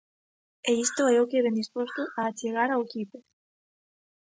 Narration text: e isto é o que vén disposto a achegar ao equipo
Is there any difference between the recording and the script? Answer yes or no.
no